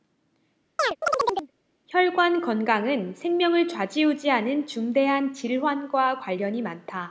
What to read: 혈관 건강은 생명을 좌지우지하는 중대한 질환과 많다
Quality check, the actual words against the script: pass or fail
fail